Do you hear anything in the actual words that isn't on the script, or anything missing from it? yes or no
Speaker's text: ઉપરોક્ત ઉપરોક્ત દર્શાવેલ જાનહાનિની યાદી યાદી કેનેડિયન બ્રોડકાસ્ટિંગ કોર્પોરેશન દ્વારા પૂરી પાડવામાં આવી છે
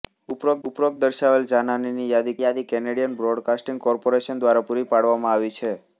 no